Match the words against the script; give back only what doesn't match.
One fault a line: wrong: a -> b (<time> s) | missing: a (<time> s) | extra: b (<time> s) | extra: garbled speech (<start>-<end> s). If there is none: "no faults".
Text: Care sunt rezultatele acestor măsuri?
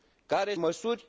missing: sunt rezultatele acestor (0.6 s)